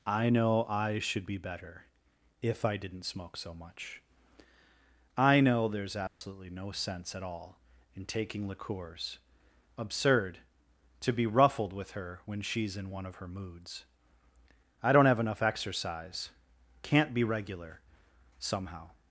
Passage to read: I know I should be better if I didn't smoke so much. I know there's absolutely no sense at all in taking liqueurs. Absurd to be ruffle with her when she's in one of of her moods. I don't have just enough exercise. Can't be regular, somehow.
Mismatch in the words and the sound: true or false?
true